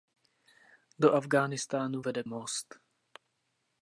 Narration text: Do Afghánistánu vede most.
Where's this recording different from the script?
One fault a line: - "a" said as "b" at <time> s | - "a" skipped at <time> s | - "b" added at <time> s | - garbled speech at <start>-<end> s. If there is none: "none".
none